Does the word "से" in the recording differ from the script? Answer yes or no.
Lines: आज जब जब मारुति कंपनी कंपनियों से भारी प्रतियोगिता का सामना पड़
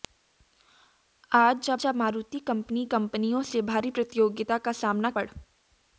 no